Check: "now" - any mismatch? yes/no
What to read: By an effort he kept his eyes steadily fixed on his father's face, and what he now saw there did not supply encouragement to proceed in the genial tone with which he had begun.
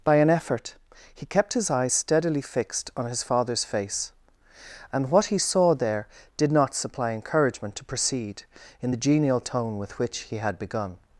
yes